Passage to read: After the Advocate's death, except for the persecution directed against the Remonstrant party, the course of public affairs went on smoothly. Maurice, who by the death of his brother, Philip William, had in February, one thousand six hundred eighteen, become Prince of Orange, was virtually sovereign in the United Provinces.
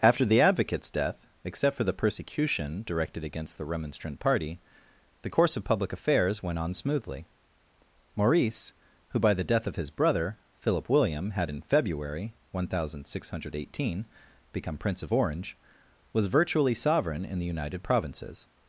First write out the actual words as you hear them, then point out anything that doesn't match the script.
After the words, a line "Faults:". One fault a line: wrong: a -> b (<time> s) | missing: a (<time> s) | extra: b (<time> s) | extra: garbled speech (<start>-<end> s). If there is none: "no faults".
After the Advocate's death, except for the persecution directed against the Remonstrant party, the course of public affairs went on smoothly. Maurice, who by the death of his brother, Philip William, had in February, one thousand six hundred eighteen, become Prince of Orange, was virtually sovereign in the United Provinces.
Faults:
no faults